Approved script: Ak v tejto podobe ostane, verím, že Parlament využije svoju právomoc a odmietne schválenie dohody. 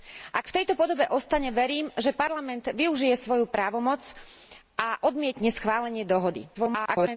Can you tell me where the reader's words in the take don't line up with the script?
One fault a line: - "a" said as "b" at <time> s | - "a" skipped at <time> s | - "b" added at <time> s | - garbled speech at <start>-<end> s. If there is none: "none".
- garbled speech at 6.5-7.2 s